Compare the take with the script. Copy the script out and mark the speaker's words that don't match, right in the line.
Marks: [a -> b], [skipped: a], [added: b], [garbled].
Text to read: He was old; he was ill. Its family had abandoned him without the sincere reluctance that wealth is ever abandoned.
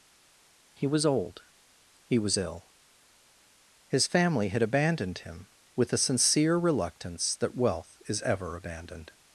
He was old; he was ill. [Its -> His] family had abandoned him [without -> with] the sincere reluctance that wealth is ever abandoned.